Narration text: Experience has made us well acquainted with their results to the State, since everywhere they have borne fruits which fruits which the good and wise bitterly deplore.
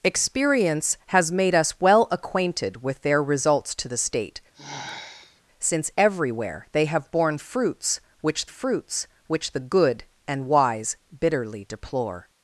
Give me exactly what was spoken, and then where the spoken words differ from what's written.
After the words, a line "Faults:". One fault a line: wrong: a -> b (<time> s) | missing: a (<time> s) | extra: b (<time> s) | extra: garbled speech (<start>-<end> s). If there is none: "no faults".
Experience has made us well acquainted with their results to the State, since everywhere they have borne fruits which fruits which the good and wise bitterly deplore.
Faults:
no faults